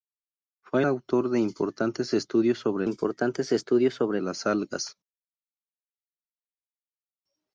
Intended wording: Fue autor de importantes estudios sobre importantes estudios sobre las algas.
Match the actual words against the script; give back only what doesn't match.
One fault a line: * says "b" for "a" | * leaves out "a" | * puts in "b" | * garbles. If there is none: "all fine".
all fine